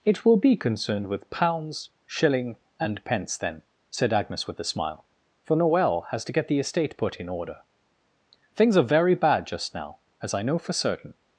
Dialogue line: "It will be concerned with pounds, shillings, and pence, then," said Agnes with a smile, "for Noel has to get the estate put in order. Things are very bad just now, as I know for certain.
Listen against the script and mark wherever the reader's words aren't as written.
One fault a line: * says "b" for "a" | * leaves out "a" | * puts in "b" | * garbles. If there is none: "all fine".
* says "shilling" for "shillings"